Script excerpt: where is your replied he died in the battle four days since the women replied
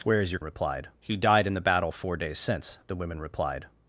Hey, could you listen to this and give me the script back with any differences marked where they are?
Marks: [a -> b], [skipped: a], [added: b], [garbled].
where is your replied he died in the battle four days since the women replied